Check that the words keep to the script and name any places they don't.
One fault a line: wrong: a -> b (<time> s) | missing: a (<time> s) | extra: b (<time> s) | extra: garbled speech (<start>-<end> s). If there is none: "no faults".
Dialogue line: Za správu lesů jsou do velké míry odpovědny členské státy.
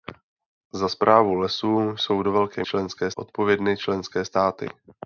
wrong: míry -> členské (2.6 s)